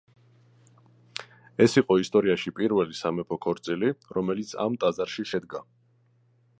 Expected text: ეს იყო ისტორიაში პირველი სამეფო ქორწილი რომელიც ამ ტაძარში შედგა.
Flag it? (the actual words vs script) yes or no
no